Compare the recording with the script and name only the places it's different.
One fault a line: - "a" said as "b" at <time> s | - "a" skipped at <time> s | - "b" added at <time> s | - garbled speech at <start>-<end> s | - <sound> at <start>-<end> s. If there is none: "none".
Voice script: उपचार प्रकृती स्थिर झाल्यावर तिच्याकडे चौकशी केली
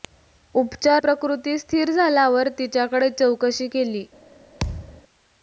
- thud at 4.6-5.0 s